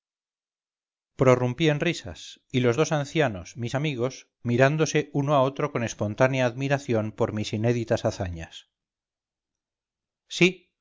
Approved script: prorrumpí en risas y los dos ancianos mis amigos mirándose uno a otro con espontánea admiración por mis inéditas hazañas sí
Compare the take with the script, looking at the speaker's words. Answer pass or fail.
pass